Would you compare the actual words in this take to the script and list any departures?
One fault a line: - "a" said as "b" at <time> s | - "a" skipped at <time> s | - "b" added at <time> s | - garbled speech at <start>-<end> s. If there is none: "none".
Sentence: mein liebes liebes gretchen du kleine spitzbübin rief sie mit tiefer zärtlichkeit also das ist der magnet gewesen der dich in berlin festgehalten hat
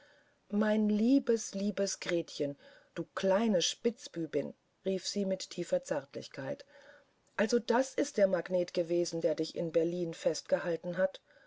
none